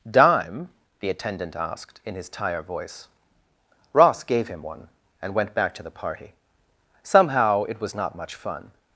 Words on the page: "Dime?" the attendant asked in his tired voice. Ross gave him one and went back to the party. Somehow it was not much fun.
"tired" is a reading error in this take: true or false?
true